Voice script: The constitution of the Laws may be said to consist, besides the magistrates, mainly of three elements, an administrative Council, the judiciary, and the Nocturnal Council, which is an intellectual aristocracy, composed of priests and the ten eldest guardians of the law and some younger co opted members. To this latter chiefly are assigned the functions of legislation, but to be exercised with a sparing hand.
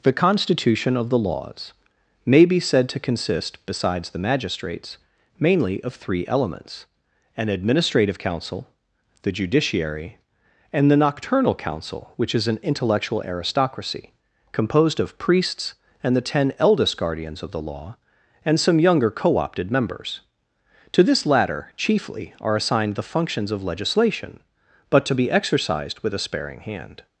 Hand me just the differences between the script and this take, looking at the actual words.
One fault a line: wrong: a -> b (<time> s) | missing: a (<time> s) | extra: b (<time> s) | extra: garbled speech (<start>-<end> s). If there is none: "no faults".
no faults